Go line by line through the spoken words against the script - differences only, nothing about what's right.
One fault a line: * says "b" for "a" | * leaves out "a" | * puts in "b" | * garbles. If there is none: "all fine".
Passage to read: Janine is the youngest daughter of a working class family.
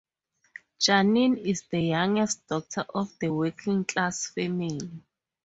all fine